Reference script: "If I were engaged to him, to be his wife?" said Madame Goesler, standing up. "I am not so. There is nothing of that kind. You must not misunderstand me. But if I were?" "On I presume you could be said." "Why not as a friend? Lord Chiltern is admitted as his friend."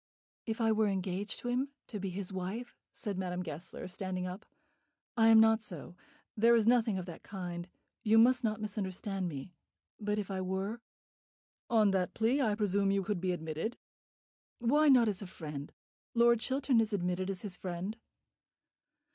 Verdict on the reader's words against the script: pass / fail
fail